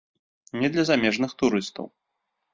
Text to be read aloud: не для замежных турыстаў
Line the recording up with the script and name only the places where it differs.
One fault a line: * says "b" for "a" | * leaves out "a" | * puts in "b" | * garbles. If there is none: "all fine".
all fine